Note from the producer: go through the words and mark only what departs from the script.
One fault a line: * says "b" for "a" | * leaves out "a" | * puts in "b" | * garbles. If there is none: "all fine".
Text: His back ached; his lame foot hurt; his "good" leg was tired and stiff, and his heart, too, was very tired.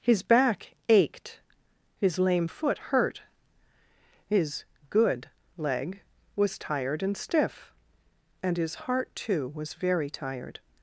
all fine